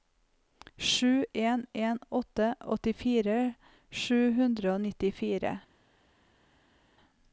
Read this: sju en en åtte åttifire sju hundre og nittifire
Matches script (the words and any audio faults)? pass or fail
pass